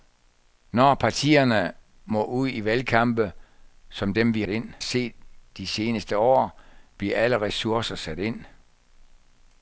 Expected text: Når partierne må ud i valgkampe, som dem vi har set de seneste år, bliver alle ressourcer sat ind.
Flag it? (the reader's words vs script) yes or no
yes